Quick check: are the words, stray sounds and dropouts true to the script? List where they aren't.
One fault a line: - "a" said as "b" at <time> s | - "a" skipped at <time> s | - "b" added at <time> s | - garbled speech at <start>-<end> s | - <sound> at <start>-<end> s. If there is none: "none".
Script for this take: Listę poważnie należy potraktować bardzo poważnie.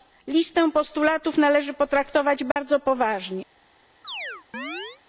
- "poważnie" said as "postulatów" at 0.7 s
- dropout at 2.5-2.6 s
- chirp at 4.0-5.0 s